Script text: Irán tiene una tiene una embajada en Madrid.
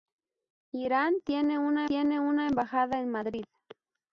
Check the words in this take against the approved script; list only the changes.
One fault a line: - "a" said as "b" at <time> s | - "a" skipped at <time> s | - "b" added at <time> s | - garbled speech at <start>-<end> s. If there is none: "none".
none